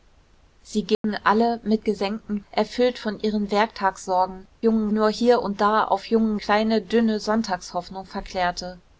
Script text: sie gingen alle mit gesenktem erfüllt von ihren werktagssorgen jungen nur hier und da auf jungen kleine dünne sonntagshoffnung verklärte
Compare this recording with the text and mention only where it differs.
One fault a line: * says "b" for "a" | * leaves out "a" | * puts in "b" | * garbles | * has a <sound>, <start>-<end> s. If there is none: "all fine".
* has a dropout, 0.9-1.0 s